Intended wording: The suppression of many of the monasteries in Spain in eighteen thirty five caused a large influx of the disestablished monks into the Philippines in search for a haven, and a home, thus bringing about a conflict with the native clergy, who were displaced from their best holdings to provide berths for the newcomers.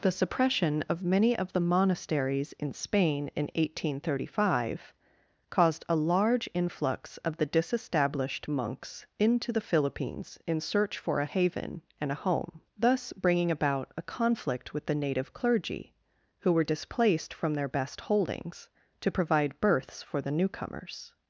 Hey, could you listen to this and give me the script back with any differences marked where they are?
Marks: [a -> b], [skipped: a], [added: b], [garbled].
The suppression of many of the monasteries in Spain in eighteen thirty five caused a large influx of the disestablished monks into the Philippines in search for a haven, and a home, thus bringing about a conflict with the native clergy, who were displaced from their best holdings to provide berths for the newcomers.